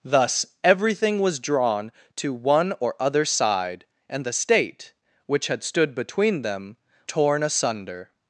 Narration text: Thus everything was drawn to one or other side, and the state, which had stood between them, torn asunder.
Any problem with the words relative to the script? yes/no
no